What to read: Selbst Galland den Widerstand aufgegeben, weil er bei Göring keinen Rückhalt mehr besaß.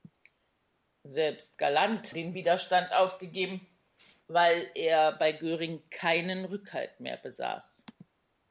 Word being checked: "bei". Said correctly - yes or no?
yes